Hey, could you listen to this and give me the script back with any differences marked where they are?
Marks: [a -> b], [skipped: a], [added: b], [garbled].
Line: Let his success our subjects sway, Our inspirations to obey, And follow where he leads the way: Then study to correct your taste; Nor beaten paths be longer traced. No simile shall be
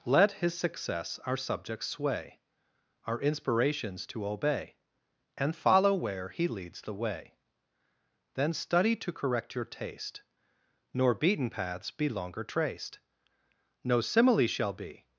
Let his success our subjects sway, Our inspirations to obey, And follow where he leads the way: Then study to correct your taste; Nor beaten paths be longer traced. No simile shall be